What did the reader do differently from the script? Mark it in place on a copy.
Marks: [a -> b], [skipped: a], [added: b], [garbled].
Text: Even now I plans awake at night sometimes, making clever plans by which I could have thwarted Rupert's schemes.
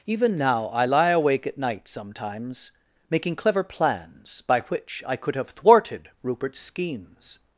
Even now I [plans -> lie] awake at night sometimes, making clever plans by which I could have thwarted Rupert's schemes.